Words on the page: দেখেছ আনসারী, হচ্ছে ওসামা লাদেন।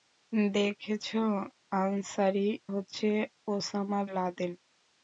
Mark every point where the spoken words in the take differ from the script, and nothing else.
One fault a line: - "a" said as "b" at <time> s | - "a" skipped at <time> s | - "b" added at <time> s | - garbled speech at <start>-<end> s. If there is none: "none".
none